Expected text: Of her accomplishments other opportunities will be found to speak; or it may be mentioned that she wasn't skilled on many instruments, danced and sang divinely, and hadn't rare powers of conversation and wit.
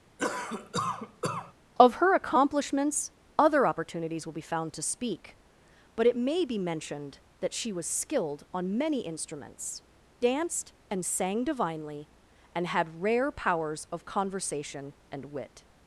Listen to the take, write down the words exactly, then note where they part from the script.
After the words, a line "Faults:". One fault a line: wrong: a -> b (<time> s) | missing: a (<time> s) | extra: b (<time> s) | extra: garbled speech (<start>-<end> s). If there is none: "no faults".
Of her accomplishments other opportunities will be found to speak; but it may be mentioned that she was skilled on many instruments, danced and sang divinely, and had rare powers of conversation and wit.
Faults:
wrong: or -> but (6.0 s)
wrong: wasn't -> was (7.7 s)
wrong: hadn't -> had (12.7 s)